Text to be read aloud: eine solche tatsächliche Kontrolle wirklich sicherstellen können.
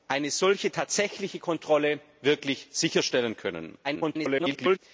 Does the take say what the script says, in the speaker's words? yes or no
no